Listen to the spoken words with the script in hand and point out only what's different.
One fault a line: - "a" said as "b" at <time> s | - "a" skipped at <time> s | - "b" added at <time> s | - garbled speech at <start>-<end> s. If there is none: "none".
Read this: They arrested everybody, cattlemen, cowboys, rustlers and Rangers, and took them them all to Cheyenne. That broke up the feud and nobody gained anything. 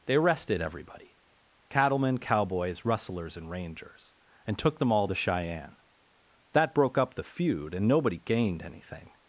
- "them" skipped at 4.9 s